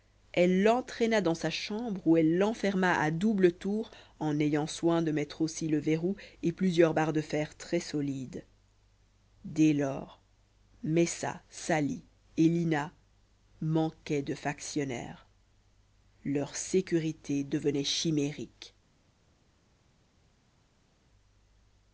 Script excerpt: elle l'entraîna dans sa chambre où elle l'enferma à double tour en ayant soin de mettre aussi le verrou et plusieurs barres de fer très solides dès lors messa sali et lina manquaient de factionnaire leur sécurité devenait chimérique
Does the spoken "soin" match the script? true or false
true